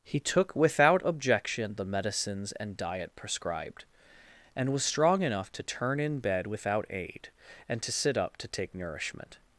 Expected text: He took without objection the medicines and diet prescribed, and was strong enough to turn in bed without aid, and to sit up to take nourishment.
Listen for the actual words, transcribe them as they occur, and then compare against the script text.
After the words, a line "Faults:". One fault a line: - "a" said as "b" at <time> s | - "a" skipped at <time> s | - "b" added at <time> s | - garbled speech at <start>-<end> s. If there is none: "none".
He took without objection the medicines and diet prescribed, and was strong enough to turn in bed without aid, and to sit up to take nourishment.
Faults:
none